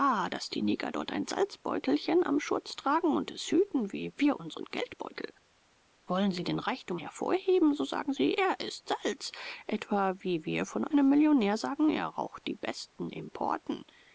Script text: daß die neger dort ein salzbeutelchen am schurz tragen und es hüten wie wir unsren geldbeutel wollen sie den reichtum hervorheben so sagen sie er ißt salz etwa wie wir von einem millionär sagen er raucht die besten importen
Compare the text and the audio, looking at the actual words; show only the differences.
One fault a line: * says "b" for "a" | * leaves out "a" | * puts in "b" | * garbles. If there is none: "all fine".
all fine